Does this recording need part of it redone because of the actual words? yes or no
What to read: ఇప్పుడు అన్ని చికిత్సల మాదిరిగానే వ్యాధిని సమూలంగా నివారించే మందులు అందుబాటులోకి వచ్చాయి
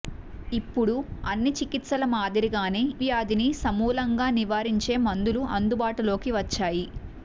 no